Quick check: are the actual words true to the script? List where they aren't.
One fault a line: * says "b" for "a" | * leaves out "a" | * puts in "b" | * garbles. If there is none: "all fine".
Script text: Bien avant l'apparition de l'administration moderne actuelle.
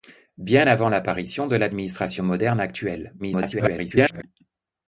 * garbles